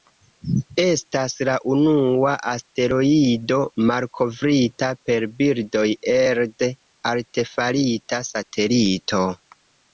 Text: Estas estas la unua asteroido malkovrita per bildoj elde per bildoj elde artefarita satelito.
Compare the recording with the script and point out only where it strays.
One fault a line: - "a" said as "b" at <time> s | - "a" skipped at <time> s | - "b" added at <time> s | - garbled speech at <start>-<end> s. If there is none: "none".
- "estas" skipped at 1.4 s
- "per bildoj elde" skipped at 6.7 s